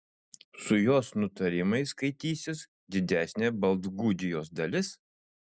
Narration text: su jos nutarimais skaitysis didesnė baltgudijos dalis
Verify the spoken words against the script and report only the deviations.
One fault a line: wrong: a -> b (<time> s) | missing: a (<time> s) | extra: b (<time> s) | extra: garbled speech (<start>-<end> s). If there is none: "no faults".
no faults